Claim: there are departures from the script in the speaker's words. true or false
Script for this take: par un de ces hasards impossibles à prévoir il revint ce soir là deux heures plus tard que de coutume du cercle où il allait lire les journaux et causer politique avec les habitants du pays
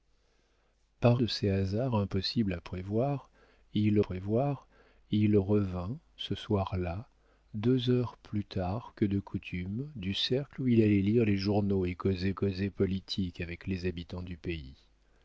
true